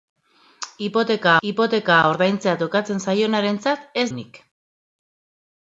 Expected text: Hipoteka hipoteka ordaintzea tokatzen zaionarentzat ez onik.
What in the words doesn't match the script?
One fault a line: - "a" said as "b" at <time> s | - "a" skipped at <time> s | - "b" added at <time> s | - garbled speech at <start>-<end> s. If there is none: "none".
none